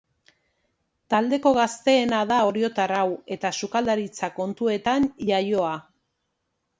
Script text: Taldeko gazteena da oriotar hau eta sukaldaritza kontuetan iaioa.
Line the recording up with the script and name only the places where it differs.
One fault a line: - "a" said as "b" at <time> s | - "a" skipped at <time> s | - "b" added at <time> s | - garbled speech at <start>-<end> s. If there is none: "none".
none